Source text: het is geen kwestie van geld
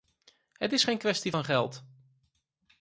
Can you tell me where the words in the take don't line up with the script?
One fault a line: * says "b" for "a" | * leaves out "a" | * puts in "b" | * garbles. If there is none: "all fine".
all fine